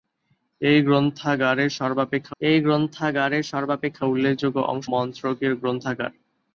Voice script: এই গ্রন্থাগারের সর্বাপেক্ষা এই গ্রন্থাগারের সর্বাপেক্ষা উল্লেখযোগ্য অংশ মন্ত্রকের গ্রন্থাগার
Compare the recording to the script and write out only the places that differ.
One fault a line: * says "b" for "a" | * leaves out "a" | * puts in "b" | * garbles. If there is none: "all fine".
all fine